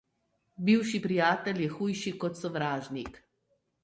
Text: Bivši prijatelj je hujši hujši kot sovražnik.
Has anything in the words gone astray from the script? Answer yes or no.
yes